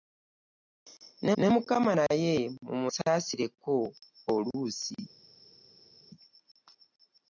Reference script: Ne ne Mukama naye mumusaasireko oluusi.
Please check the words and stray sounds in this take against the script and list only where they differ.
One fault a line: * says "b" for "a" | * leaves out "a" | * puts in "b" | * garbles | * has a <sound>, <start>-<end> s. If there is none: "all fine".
all fine